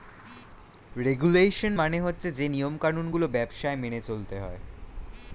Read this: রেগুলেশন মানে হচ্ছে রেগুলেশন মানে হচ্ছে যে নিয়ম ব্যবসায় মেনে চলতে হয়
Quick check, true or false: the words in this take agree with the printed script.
false